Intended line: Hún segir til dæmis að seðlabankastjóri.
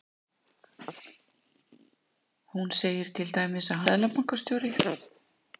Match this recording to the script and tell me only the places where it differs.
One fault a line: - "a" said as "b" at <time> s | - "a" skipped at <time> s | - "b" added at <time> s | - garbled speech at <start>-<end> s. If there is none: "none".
none